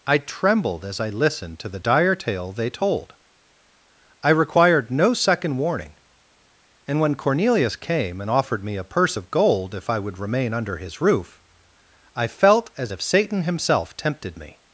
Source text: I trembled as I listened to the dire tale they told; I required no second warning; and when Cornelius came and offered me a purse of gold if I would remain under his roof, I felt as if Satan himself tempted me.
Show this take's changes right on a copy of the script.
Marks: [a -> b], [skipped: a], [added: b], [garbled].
I trembled as I listened to the dire tale they told; I required no second warning; and when Cornelius came and offered me a purse of gold if I would remain under his roof, I felt as if Satan himself tempted me.